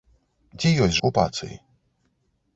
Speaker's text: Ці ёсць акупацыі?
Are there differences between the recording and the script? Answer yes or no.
no